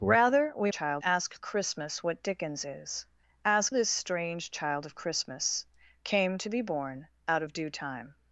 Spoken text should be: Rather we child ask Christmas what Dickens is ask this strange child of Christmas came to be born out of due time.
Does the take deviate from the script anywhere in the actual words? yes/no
no